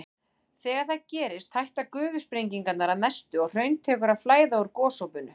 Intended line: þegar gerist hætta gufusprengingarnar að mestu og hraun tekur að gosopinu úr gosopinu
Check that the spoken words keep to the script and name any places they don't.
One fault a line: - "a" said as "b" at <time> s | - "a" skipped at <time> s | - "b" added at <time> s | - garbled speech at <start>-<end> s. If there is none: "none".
- "það" added at 0.9 s
- "gosopinu" said as "flæða" at 4.2 s